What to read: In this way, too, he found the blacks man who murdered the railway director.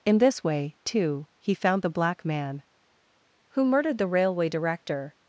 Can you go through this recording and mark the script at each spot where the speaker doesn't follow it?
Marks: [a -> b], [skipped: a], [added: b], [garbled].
In this way, too, he found the [blacks -> black] man who murdered the railway director.